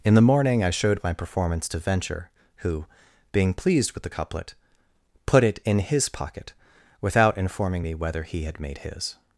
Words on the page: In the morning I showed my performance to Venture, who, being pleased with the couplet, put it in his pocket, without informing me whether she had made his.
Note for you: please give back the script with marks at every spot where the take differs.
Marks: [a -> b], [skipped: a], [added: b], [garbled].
In the morning I showed my performance to Venture, who, being pleased with the couplet, put it in his pocket, without informing me whether [she -> he] had made his.